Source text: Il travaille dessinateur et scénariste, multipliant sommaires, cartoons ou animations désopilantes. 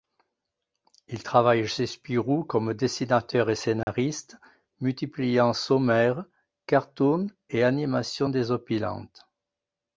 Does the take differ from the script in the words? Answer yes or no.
yes